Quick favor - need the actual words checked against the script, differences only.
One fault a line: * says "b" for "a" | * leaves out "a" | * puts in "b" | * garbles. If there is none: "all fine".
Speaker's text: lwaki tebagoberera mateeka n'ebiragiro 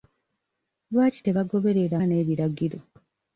* leaves out "mateeka"